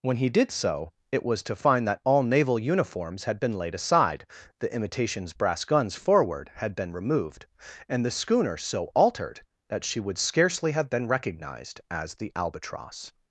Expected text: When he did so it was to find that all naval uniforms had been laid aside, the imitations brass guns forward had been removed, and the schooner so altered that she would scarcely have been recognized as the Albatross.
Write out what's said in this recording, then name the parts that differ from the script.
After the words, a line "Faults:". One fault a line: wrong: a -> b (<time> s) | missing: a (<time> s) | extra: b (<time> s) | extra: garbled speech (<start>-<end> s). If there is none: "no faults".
When he did so it was to find that all naval uniforms had been laid aside, the imitations brass guns forward had been removed, and the schooner so altered that she would scarcely have been recognized as the Albatross.
Faults:
no faults